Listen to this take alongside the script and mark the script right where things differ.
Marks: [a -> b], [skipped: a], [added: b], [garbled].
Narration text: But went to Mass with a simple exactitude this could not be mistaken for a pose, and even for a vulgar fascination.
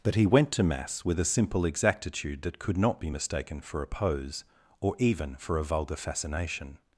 But [added: he] went to Mass with a simple exactitude [this -> that] could not be mistaken for a pose, [and -> or] even for a vulgar fascination.